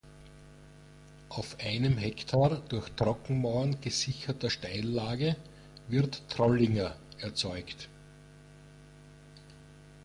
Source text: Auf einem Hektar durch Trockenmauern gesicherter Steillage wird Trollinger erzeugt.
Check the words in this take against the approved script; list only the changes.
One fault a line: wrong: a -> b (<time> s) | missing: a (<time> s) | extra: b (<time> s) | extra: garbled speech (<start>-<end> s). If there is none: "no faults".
no faults